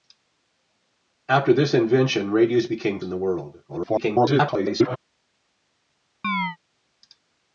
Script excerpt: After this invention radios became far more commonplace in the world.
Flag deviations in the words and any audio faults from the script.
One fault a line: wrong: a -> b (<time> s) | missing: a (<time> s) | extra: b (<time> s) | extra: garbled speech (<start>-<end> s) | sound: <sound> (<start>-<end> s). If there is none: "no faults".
missing: far more commonplace (3.0 s)
extra: garbled speech (3.7-5.0 s)
sound: chirp (6.2-6.6 s)